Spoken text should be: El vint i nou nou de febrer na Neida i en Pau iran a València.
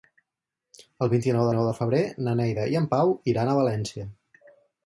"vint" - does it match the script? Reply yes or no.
yes